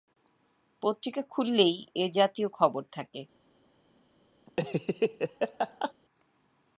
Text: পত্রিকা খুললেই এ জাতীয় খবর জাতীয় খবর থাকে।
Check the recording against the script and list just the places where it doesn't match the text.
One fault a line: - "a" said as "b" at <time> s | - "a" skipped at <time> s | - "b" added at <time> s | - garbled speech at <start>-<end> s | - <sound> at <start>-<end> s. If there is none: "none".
- "জাতীয় খবর" skipped at 2.8 s
- laugh at 4.5-5.9 s